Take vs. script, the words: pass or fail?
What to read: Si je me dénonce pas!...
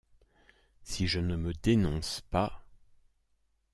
fail